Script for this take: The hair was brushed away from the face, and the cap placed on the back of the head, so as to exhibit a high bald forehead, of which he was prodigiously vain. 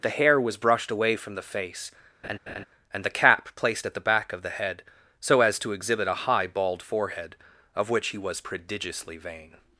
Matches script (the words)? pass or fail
fail